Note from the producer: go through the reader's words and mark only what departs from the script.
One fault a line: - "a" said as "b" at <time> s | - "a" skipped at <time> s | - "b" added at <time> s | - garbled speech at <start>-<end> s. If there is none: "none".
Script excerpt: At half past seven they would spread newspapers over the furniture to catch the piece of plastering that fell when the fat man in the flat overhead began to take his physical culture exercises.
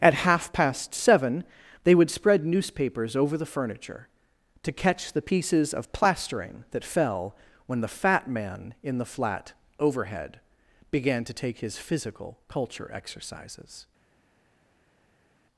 - "piece" said as "pieces" at 5.2 s